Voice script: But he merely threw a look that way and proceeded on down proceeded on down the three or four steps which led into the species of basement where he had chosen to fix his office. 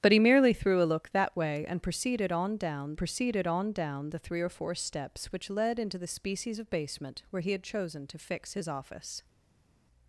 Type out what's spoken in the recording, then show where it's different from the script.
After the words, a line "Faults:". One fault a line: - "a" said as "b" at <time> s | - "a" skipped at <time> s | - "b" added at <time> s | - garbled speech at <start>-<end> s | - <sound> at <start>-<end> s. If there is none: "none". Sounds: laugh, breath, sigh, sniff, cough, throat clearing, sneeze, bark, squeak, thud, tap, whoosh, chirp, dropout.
But he merely threw a look that way and proceeded on down proceeded on down the three or four steps which led into the species of basement where he had chosen to fix his office.
Faults:
none